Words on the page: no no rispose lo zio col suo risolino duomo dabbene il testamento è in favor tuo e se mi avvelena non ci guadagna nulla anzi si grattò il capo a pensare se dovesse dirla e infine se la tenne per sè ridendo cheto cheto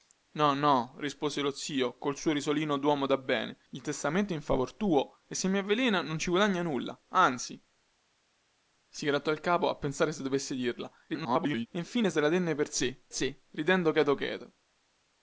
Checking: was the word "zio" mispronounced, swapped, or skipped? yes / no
no